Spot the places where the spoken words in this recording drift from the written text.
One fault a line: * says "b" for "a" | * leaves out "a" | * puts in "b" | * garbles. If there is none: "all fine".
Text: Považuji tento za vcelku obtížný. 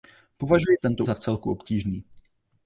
all fine